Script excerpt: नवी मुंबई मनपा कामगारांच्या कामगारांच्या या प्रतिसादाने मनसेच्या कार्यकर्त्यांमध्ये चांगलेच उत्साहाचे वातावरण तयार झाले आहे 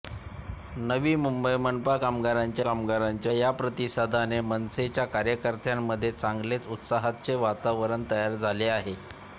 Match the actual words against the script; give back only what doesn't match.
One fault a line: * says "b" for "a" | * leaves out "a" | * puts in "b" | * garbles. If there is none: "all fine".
all fine